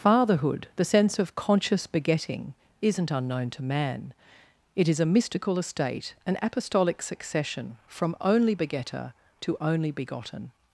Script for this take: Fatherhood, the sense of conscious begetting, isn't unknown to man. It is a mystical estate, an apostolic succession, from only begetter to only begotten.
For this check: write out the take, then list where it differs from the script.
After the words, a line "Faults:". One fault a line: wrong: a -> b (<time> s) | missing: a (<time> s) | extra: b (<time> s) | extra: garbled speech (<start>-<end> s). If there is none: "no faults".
Fatherhood, the sense of conscious begetting, isn't unknown to man. It is a mystical estate, an apostolic succession, from only begetter to only begotten.
Faults:
no faults